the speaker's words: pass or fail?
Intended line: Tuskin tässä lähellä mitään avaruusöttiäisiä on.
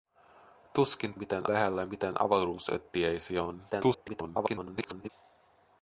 fail